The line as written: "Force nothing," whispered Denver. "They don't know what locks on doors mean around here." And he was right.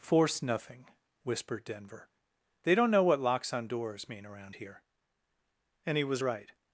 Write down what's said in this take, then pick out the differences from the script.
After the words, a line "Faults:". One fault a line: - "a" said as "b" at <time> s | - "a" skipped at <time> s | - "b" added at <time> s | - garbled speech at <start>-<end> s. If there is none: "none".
"Force nothing," whispered Denver. "They don't know what locks on doors mean around here." And he was right.
Faults:
none